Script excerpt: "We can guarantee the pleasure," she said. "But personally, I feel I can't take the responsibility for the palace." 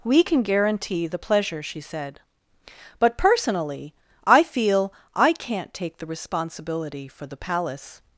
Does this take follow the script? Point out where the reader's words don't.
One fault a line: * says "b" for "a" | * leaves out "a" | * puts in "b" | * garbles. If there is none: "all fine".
all fine